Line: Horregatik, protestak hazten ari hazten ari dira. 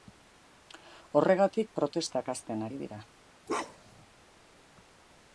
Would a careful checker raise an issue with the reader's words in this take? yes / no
yes